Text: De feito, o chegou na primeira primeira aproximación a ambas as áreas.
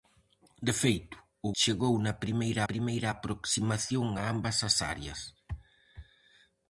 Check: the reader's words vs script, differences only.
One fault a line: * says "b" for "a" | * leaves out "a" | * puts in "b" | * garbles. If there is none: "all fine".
all fine